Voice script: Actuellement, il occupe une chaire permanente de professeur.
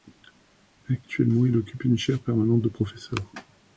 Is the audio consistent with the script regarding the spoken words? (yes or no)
yes